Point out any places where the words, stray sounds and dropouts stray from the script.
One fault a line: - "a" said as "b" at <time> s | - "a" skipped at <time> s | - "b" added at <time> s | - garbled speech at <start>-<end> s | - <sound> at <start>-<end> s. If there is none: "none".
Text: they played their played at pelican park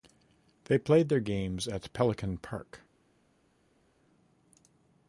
- "played" said as "games" at 1.2 s